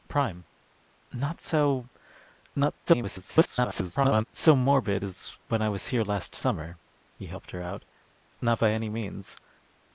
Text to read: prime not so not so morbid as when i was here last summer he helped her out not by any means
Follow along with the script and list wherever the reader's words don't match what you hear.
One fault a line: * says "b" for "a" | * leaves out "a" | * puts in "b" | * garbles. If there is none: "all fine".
* garbles